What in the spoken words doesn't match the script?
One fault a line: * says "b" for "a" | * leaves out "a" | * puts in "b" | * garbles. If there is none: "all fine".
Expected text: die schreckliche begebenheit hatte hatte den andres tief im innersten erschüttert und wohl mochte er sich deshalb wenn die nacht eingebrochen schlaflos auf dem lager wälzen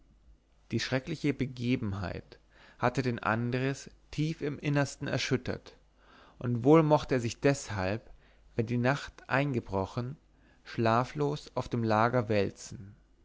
* leaves out "hatte"